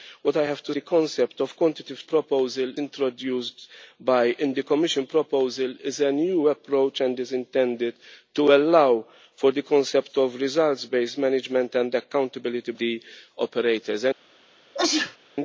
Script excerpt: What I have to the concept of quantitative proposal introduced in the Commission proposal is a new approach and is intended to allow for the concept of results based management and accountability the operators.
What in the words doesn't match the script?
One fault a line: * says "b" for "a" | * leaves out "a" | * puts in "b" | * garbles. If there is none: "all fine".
all fine